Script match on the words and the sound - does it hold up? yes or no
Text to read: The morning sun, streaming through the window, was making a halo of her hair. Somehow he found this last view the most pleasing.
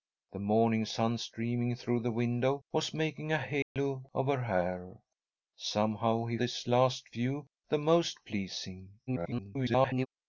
no